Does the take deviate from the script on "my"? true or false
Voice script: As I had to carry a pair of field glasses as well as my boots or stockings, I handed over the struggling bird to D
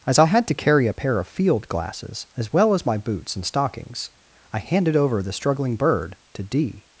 false